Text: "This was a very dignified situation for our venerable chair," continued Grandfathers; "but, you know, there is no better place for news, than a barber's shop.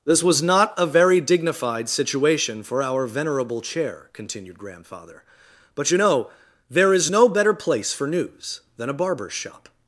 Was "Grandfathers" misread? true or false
true